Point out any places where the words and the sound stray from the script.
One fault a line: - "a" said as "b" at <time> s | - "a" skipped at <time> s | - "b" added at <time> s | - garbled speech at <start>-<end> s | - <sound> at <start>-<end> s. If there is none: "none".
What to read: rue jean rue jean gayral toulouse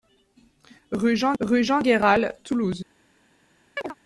- chirp at 3.8-3.9 s